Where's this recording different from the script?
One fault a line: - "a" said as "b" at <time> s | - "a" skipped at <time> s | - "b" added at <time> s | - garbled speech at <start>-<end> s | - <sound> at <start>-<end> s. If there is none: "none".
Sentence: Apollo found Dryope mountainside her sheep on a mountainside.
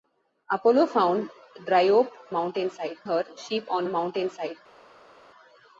none